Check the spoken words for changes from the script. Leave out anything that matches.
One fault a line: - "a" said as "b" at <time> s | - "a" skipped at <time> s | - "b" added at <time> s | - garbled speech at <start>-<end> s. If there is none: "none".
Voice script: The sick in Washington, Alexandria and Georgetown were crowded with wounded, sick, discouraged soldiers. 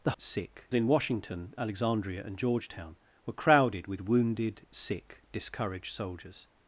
none